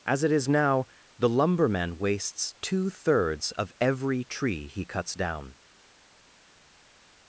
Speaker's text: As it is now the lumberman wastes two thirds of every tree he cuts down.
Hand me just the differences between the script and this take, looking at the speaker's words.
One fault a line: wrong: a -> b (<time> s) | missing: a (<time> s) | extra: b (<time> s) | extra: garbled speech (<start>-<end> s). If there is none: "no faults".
no faults